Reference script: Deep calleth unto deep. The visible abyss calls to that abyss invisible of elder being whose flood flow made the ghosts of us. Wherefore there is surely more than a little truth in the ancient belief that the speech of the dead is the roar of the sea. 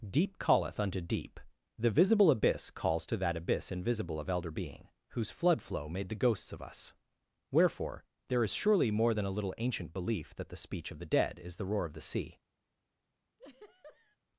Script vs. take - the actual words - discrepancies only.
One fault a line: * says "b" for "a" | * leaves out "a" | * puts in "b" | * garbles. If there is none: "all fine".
* leaves out "truth in the"